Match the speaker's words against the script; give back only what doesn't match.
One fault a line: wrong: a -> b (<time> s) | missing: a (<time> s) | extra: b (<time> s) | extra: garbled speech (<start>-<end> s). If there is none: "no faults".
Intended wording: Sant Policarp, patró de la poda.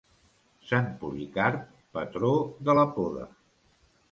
no faults